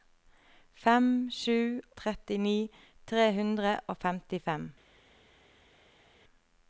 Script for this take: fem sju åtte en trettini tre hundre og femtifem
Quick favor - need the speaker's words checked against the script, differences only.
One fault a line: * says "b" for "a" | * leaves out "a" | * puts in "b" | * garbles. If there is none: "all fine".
* leaves out "åtte en"